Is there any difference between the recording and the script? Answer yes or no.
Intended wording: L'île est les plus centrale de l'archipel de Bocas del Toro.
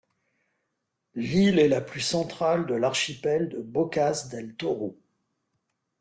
yes